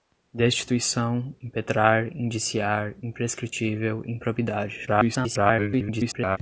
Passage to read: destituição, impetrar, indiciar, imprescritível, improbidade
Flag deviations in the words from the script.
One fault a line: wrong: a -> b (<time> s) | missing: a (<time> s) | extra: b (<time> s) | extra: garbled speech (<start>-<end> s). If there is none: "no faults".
extra: garbled speech (4.9-6.4 s)